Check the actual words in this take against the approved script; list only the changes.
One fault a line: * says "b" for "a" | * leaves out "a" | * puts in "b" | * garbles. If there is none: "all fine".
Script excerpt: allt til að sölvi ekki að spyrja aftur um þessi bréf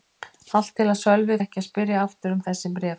all fine